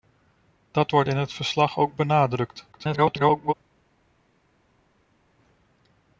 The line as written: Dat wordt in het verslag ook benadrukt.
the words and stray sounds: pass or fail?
fail